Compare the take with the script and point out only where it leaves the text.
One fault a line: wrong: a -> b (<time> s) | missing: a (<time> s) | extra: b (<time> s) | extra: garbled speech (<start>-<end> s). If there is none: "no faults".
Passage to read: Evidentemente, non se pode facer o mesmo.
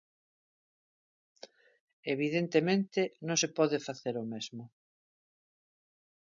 no faults